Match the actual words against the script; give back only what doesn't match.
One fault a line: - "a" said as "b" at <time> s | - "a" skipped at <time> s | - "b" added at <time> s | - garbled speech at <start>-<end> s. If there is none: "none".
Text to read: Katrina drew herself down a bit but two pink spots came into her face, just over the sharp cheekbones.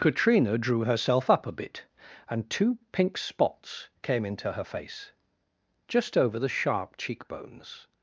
- "down" said as "up" at 1.3 s
- "but" said as "and" at 2.3 s